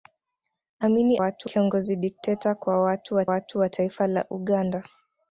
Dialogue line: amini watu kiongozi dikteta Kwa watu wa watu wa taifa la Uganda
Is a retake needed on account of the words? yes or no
no